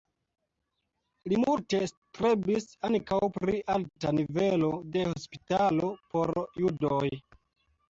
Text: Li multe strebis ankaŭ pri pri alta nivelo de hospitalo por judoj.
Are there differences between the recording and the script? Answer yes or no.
yes